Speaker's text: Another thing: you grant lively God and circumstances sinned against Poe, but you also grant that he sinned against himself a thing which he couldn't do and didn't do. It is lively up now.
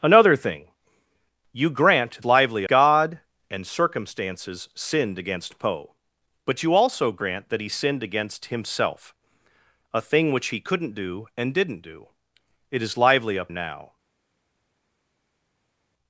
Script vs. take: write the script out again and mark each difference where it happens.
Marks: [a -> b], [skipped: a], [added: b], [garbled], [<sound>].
Another thing: you grant lively God and circumstances sinned against Poe, but you also grant that he sinned against himself a thing which he couldn't do and didn't do. It is lively up now.